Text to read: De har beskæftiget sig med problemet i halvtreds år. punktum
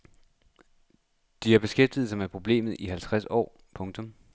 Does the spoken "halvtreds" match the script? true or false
true